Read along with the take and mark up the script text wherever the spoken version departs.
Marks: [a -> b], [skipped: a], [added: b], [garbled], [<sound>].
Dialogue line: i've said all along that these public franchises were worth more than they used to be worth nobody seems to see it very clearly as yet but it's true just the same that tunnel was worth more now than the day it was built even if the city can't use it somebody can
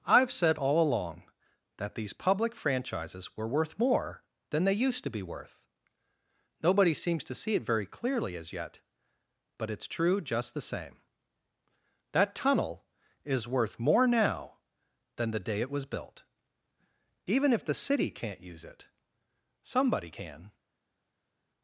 i've said all along that these public franchises were worth more than they used to be worth nobody seems to see it very clearly as yet but it's true just the same that tunnel [was -> is] worth more now than the day it was built even if the city can't use it somebody can